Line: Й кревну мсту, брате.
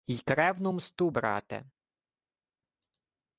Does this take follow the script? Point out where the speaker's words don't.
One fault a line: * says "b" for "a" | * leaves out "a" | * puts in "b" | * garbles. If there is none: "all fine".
all fine